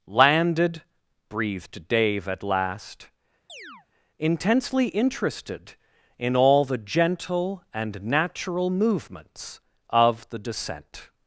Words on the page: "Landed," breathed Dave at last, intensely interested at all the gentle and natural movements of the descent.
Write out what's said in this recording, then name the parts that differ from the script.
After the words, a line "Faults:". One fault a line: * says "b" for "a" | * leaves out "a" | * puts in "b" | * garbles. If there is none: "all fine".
"Landed," breathed Dave at last, intensely interested in all the gentle and natural movements of the descent.
Faults:
* says "in" for "at"